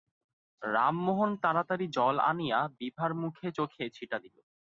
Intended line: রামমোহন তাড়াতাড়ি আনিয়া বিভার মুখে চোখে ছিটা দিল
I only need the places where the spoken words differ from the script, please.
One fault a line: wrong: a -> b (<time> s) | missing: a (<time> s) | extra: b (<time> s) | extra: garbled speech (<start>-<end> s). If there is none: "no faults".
extra: জল (2.0 s)